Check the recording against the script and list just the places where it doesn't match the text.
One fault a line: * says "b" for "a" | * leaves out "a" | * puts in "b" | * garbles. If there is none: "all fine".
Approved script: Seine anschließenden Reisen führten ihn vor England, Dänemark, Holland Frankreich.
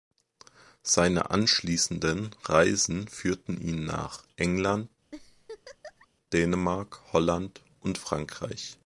* says "nach" for "vor"
* puts in "und"